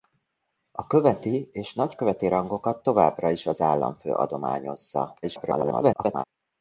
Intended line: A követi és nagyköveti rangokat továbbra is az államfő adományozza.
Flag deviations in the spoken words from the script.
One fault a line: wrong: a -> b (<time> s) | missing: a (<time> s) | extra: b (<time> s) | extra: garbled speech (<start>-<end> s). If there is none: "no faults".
extra: garbled speech (5.2-6.2 s)